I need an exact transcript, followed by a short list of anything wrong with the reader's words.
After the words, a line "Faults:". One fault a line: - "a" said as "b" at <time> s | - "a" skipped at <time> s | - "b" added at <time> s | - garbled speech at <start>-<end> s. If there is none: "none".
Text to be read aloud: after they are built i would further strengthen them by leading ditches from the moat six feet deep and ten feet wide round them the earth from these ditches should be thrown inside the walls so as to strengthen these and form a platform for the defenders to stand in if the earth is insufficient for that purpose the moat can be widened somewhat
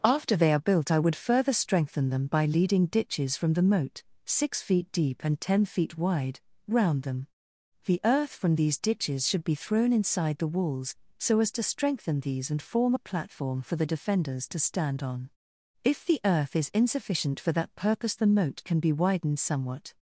after they are built i would further strengthen them by leading ditches from the moat six feet deep and ten feet wide round them the earth from these ditches should be thrown inside the walls so as to strengthen these and form a platform for the defenders to stand on if the earth is insufficient for that purpose the moat can be widened somewhat
Faults:
- "in" said as "on" at 15.0 s